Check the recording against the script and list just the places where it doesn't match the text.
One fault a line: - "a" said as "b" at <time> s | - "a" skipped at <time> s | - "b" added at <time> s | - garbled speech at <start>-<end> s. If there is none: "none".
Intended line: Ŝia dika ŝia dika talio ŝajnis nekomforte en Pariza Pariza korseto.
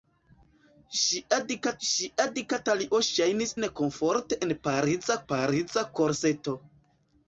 none